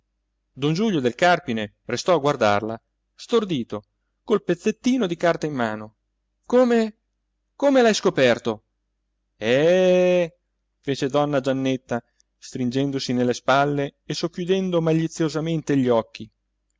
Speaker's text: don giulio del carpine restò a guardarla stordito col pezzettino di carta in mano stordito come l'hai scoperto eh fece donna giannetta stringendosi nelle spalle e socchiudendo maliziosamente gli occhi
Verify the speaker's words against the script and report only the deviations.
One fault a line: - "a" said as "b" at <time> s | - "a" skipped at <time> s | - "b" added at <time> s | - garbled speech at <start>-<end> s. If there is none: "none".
- "stordito" said as "come" at 6.5 s